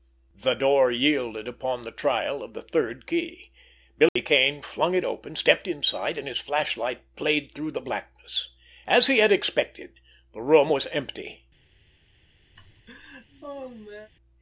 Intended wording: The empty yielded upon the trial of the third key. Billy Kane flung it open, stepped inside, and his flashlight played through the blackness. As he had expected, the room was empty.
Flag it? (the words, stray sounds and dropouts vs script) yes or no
yes